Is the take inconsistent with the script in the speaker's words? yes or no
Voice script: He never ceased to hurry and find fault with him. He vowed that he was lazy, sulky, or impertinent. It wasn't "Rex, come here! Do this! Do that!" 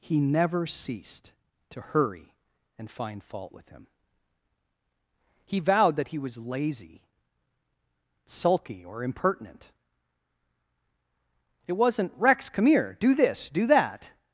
no